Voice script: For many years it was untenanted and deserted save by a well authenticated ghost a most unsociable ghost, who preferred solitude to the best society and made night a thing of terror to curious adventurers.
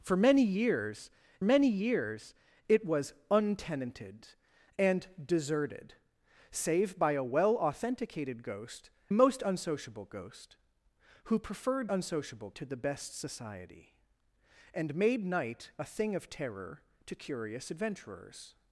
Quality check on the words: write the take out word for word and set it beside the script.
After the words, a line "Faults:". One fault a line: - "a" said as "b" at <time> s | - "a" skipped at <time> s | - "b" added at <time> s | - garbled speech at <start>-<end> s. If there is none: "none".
For many years many years it was untenanted and deserted save by a well authenticated ghost most unsociable ghost, who preferred unsociable to the best society and made night a thing of terror to curious adventurers.
Faults:
- "many years" added at 1.4 s
- "a" skipped at 8.9 s
- "solitude" said as "unsociable" at 11.9 s